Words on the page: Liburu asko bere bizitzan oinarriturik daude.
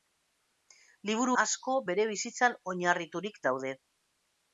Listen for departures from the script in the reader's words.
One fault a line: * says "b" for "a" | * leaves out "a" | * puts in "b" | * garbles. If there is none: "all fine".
all fine